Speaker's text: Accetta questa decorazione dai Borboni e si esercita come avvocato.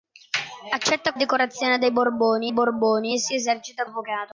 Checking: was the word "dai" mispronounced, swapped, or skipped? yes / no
no